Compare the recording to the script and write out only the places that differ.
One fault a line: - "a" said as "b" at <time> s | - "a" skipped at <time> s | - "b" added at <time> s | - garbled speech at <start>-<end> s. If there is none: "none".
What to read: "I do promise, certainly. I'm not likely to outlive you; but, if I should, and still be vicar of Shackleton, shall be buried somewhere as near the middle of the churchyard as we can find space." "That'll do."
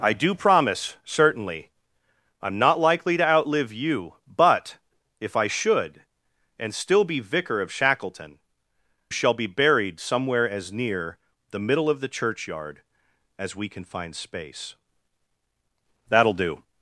none